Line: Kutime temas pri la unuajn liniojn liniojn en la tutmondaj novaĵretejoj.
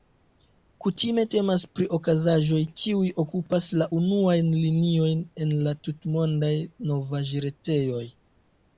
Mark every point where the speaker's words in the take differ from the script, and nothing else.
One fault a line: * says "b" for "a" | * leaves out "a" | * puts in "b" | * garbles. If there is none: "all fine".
* puts in "okazaĵoj kiuj okupas"
* leaves out "liniojn"